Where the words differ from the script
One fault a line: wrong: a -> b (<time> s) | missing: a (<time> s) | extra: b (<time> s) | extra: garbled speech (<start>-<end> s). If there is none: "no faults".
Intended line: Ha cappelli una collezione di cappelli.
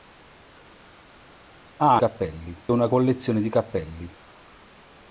no faults